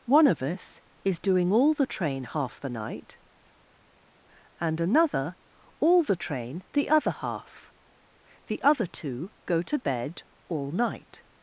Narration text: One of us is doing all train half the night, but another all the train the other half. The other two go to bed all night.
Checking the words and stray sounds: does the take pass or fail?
fail